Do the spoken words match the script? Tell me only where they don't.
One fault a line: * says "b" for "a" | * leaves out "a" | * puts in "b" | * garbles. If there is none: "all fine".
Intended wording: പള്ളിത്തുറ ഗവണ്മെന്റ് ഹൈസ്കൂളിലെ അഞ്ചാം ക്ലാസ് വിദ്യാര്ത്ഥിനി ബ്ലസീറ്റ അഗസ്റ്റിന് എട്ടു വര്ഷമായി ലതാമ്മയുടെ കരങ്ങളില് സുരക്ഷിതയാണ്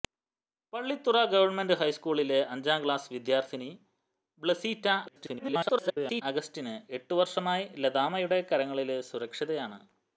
* garbles